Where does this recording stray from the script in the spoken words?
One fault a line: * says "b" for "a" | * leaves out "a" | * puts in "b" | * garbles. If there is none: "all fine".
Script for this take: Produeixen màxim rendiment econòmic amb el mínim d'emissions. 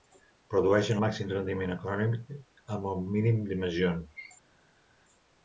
all fine